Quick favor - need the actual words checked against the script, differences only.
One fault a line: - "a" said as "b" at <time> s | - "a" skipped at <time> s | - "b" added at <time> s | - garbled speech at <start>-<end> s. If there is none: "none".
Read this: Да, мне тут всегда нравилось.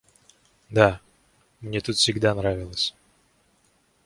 none